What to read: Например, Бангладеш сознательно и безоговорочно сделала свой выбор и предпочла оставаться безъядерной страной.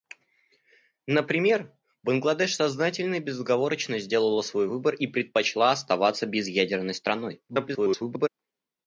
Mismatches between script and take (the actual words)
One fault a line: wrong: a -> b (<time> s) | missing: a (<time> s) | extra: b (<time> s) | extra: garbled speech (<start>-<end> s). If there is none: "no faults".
extra: garbled speech (7.5-8.3 s)